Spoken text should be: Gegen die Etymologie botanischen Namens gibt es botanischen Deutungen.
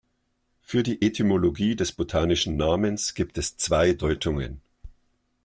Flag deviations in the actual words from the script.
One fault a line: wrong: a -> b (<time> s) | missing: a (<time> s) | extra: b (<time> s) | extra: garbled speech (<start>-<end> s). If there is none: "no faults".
wrong: Gegen -> Für (0.6 s)
extra: des (1.8 s)
wrong: botanischen -> zwei (3.6 s)